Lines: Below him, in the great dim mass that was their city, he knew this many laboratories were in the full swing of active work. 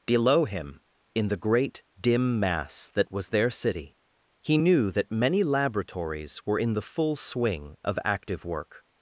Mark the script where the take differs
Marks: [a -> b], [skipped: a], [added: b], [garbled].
Below him, in the great dim mass that was their city, he knew [this -> that] many laboratories were in the full swing of active work.